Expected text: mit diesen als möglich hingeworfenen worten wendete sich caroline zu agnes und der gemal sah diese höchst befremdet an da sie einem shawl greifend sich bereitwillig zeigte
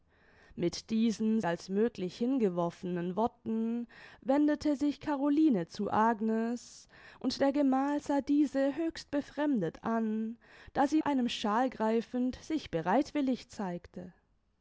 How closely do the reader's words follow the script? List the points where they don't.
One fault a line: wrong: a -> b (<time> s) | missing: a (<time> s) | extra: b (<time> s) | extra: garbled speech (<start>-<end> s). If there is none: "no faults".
no faults